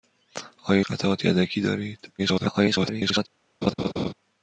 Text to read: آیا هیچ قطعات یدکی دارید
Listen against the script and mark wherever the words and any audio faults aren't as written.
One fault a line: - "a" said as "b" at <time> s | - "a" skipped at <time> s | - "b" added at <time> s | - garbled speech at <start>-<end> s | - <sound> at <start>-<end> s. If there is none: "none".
- "هیچ" skipped at 0.8 s
- garbled speech at 2.2-3.3 s
- laugh at 3.6-4.1 s